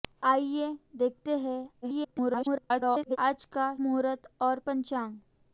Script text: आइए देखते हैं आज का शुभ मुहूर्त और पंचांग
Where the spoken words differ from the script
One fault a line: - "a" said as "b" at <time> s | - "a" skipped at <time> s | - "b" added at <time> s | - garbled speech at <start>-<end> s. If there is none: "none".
- garbled speech at 1.8-3.2 s
- "शुभ" skipped at 3.8 s